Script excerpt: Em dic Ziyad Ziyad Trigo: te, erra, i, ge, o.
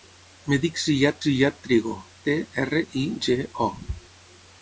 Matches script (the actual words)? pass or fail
pass